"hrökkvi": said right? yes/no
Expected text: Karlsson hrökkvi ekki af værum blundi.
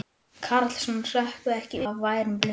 yes